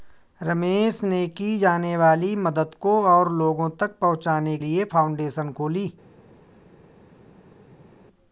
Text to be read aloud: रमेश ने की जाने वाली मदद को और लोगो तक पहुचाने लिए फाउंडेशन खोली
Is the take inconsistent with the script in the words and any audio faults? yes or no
no